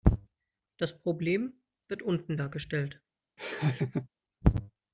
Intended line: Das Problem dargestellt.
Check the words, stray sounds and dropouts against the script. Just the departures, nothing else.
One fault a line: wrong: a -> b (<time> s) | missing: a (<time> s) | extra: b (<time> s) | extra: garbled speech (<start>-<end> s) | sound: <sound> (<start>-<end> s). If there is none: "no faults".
extra: wird unten (1.9 s)
sound: laugh (3.4-4.1 s)